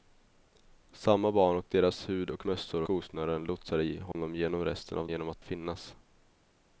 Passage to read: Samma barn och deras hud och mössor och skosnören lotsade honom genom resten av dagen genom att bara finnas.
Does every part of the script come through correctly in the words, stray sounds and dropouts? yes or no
no